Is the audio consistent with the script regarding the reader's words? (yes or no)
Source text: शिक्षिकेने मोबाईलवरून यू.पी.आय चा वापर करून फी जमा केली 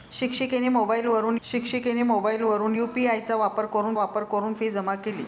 no